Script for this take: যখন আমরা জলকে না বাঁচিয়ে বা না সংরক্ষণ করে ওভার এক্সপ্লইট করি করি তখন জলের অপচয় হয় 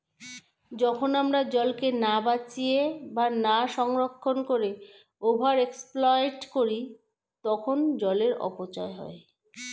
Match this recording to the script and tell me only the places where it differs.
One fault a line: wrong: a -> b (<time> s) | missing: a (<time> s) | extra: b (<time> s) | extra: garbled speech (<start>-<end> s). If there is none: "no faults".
missing: করি (6.8 s)